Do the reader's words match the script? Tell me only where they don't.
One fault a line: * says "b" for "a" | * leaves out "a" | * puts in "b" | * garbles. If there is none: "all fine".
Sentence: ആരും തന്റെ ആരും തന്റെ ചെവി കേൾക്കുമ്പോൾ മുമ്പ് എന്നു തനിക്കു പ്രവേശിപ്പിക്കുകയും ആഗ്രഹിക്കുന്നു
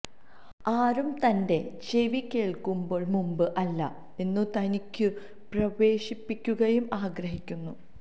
* leaves out "ആരും തന്റെ"
* puts in "അല്ല"